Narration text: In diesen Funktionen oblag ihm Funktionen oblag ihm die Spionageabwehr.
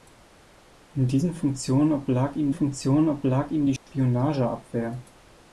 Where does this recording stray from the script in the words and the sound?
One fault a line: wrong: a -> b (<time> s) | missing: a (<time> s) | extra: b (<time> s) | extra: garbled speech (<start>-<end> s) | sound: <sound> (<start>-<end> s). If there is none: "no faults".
sound: dropout (3.8-3.9 s)